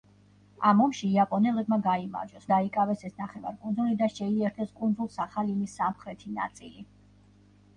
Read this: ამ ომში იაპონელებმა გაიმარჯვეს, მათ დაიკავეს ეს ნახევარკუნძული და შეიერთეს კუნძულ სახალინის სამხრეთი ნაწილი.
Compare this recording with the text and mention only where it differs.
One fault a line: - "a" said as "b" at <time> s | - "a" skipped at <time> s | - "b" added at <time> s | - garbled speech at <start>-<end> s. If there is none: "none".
- "მათ" skipped at 2.5 s